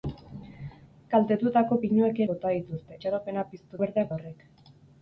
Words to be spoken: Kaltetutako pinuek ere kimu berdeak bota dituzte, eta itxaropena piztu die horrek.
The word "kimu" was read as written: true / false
false